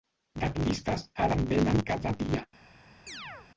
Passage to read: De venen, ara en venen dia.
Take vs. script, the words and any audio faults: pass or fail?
fail